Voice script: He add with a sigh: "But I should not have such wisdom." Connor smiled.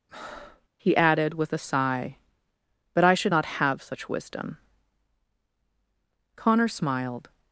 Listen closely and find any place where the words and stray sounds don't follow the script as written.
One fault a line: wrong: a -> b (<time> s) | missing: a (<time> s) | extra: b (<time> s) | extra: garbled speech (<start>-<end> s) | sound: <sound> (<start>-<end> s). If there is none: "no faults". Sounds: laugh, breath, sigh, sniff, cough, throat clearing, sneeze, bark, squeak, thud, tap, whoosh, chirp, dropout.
sound: breath (0.1-0.7 s)
wrong: add -> added (1.0 s)